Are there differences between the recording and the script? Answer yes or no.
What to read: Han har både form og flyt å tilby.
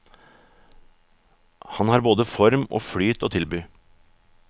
no